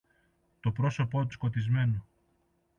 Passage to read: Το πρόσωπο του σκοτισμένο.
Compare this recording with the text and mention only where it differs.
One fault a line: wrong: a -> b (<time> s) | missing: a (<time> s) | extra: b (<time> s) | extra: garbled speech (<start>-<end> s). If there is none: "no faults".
no faults